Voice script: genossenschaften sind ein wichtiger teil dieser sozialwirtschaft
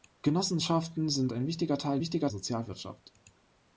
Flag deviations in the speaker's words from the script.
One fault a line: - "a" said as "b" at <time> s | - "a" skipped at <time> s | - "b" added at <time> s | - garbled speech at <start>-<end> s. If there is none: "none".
- "dieser" said as "wichtiger" at 2.0 s